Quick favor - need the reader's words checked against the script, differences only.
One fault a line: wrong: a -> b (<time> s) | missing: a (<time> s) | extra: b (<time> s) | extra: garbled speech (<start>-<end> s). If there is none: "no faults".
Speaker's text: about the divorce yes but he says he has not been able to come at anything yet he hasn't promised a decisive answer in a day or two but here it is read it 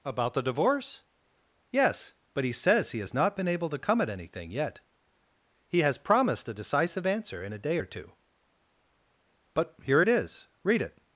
wrong: hasn't -> has (5.8 s)